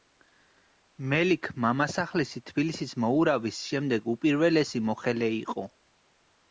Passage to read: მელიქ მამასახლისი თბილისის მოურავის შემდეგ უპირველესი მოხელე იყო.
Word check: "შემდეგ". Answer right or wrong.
right